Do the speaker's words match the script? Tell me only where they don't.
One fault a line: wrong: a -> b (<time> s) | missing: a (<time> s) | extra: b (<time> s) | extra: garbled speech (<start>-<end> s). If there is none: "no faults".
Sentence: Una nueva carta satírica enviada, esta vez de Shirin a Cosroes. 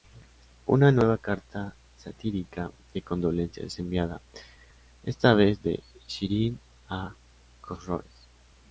extra: de condolencias es (2.9 s)